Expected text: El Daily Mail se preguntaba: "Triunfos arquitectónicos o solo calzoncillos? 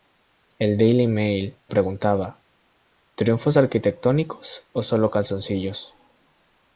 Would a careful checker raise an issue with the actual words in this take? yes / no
yes